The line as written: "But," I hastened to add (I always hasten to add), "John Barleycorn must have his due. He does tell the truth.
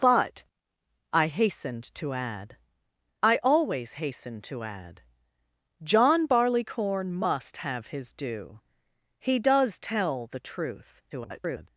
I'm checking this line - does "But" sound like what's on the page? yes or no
yes